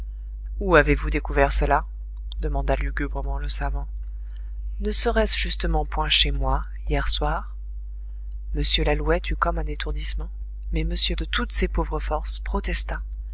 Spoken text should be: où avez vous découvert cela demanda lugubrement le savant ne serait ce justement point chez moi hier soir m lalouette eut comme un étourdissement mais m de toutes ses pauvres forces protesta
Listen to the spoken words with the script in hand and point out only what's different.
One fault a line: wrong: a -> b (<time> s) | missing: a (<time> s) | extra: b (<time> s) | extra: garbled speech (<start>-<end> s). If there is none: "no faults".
no faults